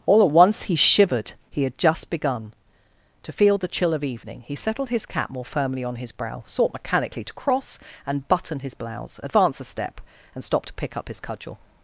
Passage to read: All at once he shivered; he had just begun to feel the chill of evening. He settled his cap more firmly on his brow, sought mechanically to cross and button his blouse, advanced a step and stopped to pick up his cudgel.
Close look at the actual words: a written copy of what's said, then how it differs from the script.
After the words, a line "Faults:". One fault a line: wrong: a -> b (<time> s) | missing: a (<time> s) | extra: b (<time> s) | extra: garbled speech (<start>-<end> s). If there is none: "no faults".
All at once he shivered; he had just begun to feel the chill of evening. He settled his cap more firmly on his brow, sought mechanically to cross and button his blouse, advance a step and stopped to pick up his cudgel.
Faults:
wrong: advanced -> advance (9.2 s)